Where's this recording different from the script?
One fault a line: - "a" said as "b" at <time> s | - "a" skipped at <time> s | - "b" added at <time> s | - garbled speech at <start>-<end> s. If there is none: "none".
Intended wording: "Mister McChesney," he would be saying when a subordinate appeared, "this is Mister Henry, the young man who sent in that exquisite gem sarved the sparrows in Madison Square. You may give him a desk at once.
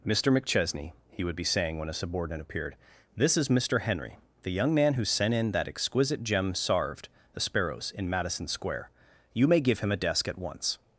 none